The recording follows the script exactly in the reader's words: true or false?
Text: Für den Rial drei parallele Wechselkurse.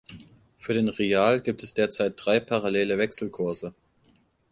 false